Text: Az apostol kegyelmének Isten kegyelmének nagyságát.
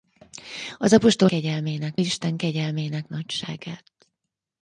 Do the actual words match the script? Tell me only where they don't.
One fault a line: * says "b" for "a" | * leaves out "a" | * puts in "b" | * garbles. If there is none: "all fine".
all fine